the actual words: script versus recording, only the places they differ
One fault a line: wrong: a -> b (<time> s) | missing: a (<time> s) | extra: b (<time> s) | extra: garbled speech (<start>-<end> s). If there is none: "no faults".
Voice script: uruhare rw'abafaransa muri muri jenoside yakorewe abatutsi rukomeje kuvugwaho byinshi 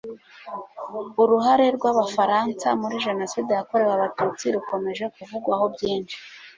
missing: muri (3.0 s)